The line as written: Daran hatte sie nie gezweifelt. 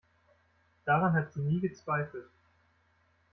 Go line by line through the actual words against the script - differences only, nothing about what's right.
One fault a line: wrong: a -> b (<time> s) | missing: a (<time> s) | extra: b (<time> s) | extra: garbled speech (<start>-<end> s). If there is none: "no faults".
wrong: hatte -> hat (1.1 s)